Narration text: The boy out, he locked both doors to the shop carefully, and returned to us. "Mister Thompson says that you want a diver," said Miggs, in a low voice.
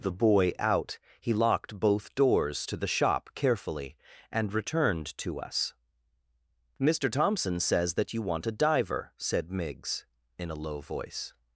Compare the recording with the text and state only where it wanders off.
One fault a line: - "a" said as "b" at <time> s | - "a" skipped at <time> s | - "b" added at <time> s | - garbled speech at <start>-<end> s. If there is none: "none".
none